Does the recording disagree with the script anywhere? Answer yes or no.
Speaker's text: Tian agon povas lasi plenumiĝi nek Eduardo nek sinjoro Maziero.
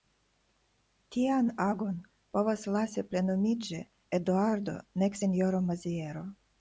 yes